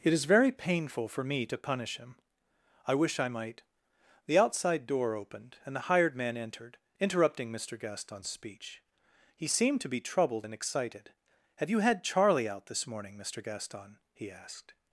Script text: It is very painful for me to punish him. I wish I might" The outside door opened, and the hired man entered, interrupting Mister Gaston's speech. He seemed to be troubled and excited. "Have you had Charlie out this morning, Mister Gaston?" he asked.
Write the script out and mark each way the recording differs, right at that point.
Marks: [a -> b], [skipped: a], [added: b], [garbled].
It is very painful for me to punish him. I wish I might" The outside door opened, and the hired man entered, interrupting Mister Gaston's speech. He seemed to be troubled and excited. "Have you had Charlie out this morning, Mister Gaston?" he asked.